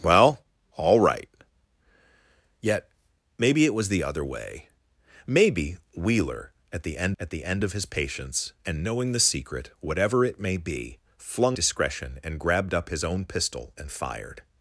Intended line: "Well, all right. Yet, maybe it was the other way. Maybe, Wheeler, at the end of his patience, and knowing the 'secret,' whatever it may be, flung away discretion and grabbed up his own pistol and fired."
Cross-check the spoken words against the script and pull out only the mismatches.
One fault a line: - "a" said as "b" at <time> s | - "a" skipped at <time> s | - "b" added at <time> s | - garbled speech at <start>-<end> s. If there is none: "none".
- "at the end" added at 7.2 s
- "away" skipped at 11.6 s